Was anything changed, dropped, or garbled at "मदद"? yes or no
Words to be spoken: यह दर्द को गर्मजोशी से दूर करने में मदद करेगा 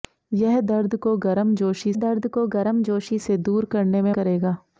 yes